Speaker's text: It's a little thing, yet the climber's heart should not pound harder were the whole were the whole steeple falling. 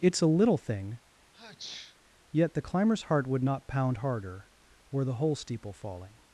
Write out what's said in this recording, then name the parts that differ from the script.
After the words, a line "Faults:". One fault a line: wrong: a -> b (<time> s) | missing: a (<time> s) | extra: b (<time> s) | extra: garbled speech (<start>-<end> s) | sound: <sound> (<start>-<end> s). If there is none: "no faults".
It's a little thing, yet the climber's heart would not pound harder were the whole steeple falling.
Faults:
sound: sneeze (1.3-2.0 s)
wrong: should -> would (3.3 s)
missing: were the whole (5.3 s)